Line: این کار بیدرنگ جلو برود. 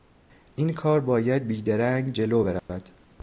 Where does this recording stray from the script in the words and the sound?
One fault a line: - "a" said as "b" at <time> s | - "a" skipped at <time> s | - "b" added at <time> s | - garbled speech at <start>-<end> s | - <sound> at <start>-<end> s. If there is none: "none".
- "باید" added at 1.0 s
- dropout at 2.6-2.7 s